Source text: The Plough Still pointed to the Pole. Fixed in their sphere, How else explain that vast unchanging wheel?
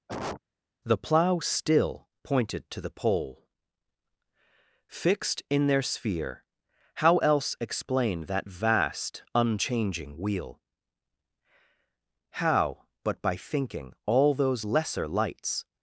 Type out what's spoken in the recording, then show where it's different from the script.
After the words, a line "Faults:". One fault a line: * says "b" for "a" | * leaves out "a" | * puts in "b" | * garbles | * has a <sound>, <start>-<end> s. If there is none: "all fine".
The Plough Still pointed to the Pole. Fixed in their sphere, How else explain that vast unchanging wheel? How, but by thinking all those lesser lights
Faults:
* has a cough, 0.1-0.4 s
* puts in "How but by thinking all those lesser lights"